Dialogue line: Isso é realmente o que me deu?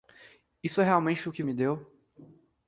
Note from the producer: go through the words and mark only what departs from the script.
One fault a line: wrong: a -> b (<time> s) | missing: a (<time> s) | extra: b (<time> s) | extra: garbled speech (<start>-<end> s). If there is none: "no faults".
no faults